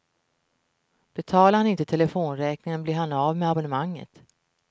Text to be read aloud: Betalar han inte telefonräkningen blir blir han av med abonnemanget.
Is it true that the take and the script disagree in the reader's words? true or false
true